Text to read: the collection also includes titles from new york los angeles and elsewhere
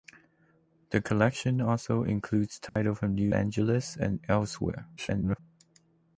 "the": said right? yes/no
yes